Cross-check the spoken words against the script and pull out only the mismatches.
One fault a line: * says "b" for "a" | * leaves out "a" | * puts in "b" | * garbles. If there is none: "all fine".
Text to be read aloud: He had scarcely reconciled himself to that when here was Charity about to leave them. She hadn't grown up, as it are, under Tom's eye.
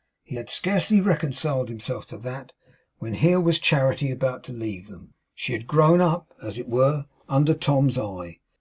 * says "had" for "hadn't"
* says "were" for "are"